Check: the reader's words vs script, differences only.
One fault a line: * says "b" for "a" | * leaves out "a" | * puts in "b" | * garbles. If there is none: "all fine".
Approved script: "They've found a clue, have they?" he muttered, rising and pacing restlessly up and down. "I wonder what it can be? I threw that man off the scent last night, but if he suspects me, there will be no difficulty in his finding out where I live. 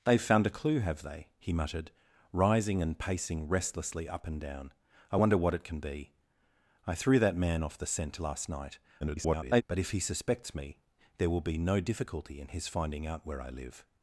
* garbles